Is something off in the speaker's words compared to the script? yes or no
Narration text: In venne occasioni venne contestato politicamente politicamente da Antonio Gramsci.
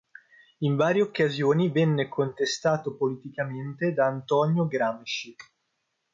yes